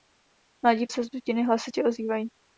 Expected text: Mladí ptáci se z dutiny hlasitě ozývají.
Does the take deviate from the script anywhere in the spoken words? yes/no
yes